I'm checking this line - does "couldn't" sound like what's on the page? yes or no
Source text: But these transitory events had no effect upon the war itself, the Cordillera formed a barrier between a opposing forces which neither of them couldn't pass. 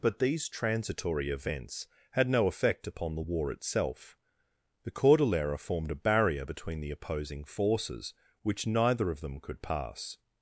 no